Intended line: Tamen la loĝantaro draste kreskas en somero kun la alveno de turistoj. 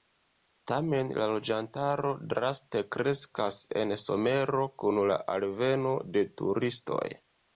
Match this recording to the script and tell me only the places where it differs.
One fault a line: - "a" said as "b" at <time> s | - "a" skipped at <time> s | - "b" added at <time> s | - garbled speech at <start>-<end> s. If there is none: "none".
none